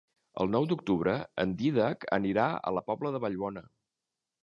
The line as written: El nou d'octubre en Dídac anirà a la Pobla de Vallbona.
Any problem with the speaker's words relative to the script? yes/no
no